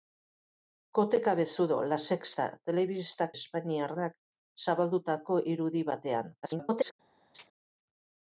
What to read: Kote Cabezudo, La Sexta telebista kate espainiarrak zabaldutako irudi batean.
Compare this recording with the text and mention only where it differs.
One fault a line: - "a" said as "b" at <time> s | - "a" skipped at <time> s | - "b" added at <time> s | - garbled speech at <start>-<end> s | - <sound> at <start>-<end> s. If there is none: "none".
- "kate" skipped at 3.3 s
- garbled speech at 6.4-6.9 s
- laugh at 7.3-7.5 s